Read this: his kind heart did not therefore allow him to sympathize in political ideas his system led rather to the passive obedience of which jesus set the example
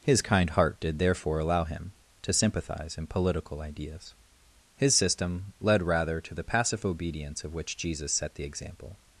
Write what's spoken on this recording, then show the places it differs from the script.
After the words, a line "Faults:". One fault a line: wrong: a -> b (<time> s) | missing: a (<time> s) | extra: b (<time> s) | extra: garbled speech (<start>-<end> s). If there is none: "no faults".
his kind heart did therefore allow him to sympathize in political ideas his system led rather to the passive obedience of which jesus set the example
Faults:
missing: not (1.0 s)